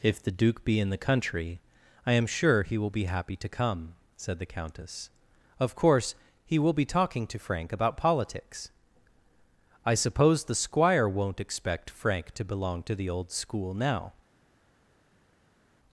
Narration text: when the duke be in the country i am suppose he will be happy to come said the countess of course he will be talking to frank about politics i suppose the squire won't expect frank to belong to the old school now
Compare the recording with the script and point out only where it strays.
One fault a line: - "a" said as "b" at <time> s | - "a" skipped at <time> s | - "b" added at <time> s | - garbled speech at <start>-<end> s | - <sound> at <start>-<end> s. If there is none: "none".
- "when" said as "if" at 0.0 s
- "suppose" said as "sure" at 2.2 s